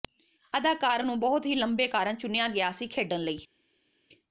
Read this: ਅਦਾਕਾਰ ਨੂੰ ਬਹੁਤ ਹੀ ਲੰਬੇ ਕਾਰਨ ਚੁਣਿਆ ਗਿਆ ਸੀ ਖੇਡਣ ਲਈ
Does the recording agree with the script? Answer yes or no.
yes